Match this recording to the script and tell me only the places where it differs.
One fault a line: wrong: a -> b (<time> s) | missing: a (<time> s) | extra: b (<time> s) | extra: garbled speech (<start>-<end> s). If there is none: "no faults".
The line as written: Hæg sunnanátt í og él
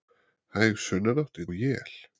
no faults